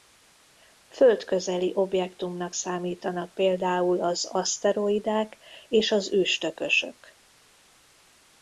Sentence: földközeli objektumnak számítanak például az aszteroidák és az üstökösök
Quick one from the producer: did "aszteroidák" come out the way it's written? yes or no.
yes